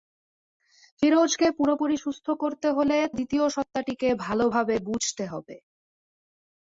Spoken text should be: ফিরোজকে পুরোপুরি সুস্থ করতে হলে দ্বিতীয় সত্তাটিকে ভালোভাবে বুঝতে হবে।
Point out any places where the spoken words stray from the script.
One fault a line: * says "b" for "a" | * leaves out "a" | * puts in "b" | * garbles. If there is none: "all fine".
all fine